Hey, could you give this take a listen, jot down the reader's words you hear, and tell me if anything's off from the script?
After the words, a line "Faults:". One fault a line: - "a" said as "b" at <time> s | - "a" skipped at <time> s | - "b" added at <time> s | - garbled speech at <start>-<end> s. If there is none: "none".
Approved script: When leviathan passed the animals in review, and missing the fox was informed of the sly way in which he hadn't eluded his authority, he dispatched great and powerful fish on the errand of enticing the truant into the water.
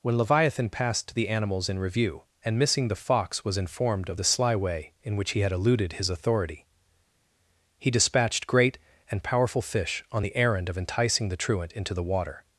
When leviathan passed the animals in review, and missing the fox was informed of the sly way in which he had eluded his authority, he dispatched great and powerful fish on the errand of enticing the truant into the water.
Faults:
- "hadn't" said as "had" at 5.4 s